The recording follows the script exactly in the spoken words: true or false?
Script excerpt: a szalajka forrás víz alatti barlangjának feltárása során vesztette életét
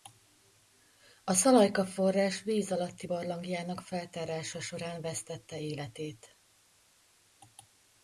true